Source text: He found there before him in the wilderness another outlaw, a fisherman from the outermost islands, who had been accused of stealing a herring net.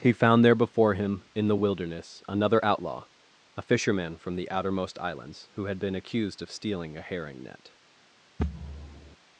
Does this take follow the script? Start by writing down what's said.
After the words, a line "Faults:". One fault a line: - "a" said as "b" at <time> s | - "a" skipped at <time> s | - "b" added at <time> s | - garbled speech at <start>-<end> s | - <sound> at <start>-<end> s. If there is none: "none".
He found there before him in the wilderness another outlaw, a fisherman from the outermost islands, who had been accused of stealing a herring net.
Faults:
- thud at 8.4-9.2 s